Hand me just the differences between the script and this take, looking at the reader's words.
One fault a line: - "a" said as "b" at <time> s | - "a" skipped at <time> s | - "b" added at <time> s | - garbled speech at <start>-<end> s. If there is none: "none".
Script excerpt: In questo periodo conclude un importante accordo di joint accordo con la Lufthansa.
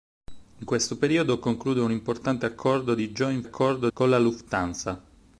none